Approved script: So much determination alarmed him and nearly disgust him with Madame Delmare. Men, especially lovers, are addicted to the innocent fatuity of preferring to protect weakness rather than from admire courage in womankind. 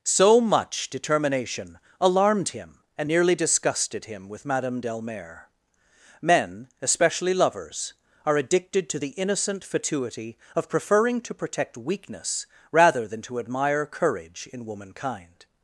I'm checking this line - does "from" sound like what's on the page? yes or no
no